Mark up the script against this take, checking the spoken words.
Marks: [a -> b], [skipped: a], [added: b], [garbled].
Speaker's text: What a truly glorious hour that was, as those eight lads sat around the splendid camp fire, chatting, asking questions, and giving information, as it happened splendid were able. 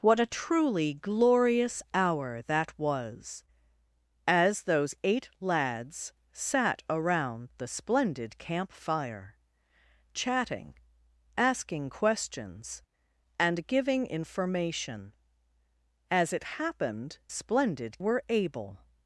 What a truly glorious hour that was, as those eight lads sat around the splendid camp fire, chatting, asking questions, and giving information, as it happened splendid were able.